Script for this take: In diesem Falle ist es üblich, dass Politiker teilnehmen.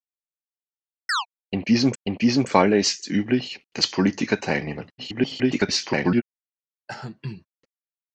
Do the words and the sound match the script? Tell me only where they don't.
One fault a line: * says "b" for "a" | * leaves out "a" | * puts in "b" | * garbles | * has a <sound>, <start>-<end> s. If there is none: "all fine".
* has a chirp, 1.1-1.3 s
* puts in "in diesem"
* garbles
* has a throat clearing, 6.9-7.5 s